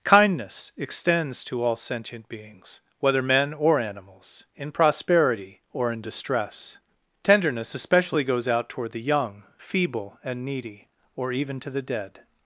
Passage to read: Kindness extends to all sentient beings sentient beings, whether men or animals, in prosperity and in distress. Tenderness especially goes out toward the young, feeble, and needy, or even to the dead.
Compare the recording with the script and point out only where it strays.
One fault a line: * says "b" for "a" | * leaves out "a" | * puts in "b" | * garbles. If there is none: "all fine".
* leaves out "sentient beings"
* says "or" for "and"